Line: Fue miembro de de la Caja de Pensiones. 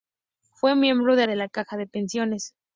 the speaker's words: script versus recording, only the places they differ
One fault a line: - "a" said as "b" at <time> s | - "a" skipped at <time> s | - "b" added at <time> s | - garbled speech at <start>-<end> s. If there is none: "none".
none